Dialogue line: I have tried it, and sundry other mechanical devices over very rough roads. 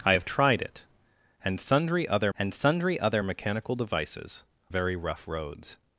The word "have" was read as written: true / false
true